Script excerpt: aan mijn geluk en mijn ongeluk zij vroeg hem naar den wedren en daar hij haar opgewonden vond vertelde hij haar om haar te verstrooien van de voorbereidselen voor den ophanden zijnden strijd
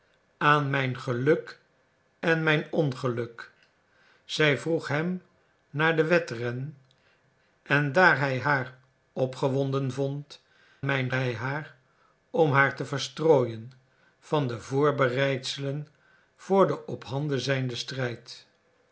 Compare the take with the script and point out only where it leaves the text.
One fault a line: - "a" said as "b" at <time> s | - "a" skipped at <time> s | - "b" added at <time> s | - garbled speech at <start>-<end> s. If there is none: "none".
- "vertelde" said as "mijn" at 10.8 s